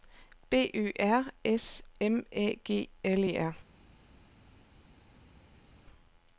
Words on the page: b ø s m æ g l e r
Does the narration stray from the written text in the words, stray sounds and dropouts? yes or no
yes